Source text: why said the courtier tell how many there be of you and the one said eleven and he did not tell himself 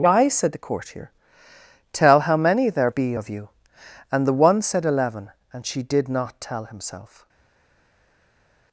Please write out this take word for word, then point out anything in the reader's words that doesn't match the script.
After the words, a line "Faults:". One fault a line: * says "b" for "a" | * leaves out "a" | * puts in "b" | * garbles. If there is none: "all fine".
why said the courtier tell how many there be of you and the one said eleven and she did not tell himself
Faults:
* says "she" for "he"